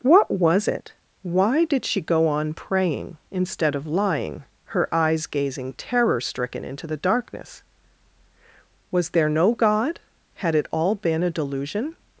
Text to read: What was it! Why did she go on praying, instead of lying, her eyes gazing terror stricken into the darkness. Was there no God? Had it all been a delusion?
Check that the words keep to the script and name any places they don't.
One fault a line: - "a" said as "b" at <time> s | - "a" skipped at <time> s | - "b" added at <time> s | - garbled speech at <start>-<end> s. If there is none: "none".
none